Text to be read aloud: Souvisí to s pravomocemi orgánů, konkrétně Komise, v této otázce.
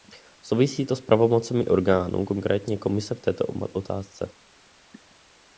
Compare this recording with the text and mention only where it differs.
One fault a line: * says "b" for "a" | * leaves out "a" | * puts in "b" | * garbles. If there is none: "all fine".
all fine